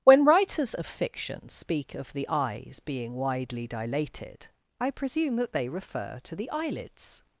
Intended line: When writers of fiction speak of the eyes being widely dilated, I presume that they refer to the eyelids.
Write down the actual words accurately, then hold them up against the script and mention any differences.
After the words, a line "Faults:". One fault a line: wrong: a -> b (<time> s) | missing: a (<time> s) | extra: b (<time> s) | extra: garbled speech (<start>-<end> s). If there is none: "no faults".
When writers of fiction speak of the eyes being widely dilated, I presume that they refer to the eyelids.
Faults:
no faults